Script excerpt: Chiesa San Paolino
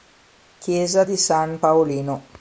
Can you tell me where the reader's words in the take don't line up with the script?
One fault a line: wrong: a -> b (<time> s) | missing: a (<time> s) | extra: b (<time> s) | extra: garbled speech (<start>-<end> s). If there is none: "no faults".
extra: di (1.0 s)